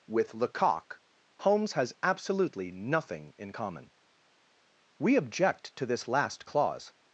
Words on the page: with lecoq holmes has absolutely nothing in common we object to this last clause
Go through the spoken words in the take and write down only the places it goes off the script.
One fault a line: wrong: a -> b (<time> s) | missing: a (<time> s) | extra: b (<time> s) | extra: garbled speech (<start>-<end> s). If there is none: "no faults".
no faults